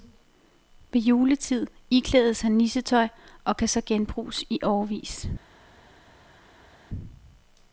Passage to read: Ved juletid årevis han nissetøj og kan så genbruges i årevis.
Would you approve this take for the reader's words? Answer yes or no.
no